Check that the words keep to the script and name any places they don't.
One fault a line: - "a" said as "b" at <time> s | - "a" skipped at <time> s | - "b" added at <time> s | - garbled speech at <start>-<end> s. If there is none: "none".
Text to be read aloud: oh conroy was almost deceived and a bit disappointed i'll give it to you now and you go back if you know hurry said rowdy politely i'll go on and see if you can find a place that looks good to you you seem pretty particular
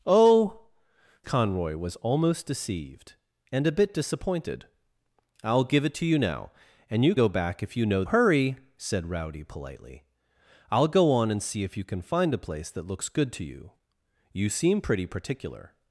none